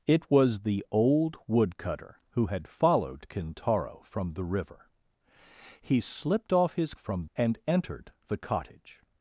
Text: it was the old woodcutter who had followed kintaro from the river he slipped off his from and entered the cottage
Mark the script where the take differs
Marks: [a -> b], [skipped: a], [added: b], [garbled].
it was the old woodcutter who had followed kintaro from the river he slipped off his from and entered the cottage